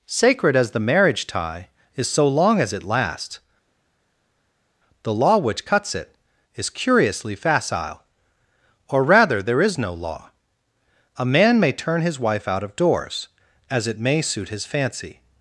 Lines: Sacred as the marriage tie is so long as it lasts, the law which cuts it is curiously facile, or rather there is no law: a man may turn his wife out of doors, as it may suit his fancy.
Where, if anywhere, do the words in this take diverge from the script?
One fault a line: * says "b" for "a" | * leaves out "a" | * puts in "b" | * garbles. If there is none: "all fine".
all fine